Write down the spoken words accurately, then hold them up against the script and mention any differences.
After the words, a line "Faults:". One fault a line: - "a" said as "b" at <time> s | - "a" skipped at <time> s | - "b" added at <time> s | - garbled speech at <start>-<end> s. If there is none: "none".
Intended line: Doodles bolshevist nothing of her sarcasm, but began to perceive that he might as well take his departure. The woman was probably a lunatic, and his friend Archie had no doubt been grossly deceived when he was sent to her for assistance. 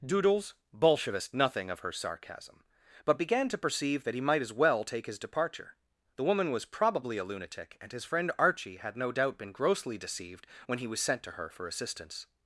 Doodles bolshevist nothing of her sarcasm, but began to perceive that he might as well take his departure. The woman was probably a lunatic, and his friend Archie had no doubt been grossly deceived when he was sent to her for assistance.
Faults:
none